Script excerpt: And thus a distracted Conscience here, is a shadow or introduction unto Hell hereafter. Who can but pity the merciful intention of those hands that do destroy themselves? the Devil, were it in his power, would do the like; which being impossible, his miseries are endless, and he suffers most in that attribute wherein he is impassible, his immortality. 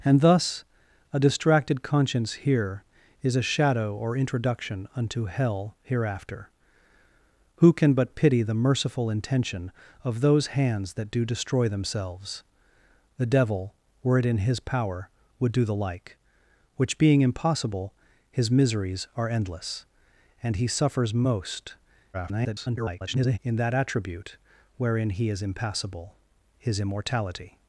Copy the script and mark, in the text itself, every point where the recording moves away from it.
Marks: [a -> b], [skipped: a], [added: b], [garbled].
And thus a distracted Conscience here, is a shadow or introduction unto Hell hereafter. Who can but pity the merciful intention of those hands that do destroy themselves? the Devil, were it in his power, would do the like; which being impossible, his miseries are endless, and he suffers most [garbled] in that attribute wherein he is impassible, his immortality.